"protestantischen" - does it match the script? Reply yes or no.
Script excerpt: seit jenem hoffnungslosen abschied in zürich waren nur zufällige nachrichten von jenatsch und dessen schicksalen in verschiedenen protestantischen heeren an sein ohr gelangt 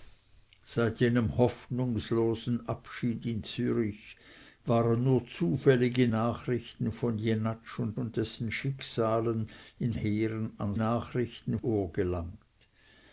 no